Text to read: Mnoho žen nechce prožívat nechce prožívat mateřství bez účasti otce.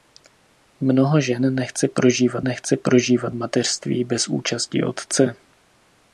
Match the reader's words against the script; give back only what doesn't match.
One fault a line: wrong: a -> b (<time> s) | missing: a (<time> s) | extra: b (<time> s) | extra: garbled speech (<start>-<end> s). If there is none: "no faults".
no faults